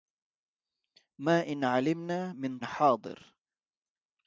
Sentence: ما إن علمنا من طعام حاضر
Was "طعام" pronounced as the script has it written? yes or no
no